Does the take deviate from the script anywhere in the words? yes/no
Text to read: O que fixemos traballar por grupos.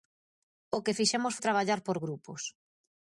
no